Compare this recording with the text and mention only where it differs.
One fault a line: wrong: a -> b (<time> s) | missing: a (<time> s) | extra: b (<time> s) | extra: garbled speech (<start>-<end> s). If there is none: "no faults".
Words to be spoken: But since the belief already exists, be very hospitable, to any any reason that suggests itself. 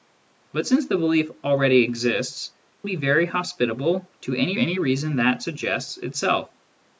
no faults